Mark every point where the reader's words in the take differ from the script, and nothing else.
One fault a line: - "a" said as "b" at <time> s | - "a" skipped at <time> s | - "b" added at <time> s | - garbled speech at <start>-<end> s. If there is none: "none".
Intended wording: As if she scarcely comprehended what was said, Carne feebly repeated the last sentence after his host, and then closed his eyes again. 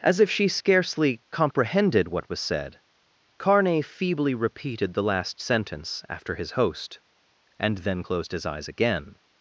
none